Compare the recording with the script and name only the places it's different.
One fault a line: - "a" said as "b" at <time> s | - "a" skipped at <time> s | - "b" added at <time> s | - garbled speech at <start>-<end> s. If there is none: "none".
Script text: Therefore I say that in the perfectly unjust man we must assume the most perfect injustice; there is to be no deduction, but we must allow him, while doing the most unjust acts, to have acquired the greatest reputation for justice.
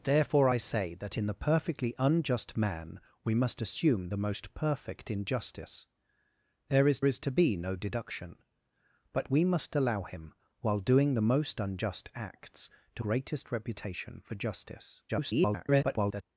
- "is" added at 7.0 s
- "have acquired the" skipped at 13.0 s
- garbled speech at 15.1-16.2 s